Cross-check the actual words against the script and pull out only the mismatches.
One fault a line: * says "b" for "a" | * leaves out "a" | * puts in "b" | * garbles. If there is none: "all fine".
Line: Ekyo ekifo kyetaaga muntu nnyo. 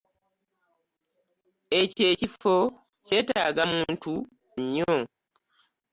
all fine